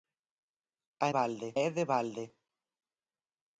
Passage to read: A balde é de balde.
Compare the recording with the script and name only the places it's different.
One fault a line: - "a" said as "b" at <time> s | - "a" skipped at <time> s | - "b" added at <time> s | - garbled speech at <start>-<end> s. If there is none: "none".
none